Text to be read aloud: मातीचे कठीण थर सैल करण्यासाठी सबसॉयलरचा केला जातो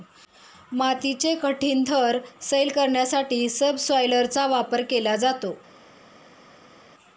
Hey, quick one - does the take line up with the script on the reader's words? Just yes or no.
no